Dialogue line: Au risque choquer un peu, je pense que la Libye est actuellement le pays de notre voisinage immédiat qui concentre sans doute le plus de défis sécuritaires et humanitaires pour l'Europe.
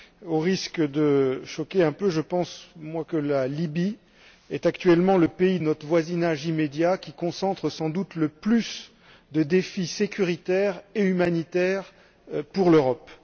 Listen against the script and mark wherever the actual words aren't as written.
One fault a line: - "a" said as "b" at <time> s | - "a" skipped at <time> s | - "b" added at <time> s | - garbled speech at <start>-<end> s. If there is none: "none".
- "de" added at 0.8 s